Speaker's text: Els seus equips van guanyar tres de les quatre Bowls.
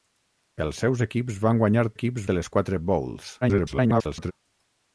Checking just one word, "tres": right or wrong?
wrong